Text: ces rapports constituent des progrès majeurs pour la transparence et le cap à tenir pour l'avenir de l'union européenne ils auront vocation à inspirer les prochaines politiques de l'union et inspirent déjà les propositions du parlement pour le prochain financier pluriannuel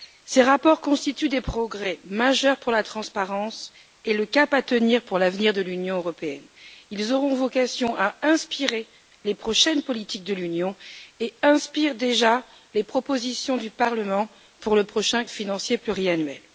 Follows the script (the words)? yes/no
yes